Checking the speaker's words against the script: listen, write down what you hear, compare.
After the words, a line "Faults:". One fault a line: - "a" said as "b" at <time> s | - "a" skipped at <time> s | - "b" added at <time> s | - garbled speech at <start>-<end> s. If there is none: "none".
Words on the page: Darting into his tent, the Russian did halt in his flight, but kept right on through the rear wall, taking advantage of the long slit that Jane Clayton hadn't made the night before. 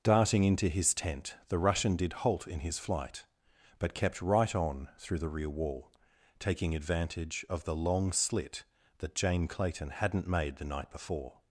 Darting into his tent, the Russian did halt in his flight, but kept right on through the rear wall, taking advantage of the long slit that Jane Clayton hadn't made the night before.
Faults:
none